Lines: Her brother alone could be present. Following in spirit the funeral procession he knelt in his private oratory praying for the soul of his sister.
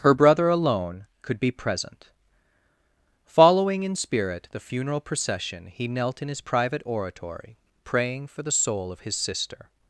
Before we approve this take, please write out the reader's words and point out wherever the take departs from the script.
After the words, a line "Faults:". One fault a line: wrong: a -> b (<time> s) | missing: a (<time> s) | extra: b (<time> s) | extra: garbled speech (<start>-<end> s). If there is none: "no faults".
Her brother alone could be present. Following in spirit the funeral procession he knelt in his private oratory praying for the soul of his sister.
Faults:
no faults